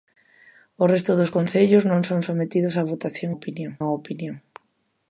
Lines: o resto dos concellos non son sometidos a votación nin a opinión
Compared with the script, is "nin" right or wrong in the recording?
wrong